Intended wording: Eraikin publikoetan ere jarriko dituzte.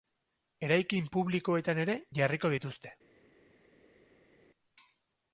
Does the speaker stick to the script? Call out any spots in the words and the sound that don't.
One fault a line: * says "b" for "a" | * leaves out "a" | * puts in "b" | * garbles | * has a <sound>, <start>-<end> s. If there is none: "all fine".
all fine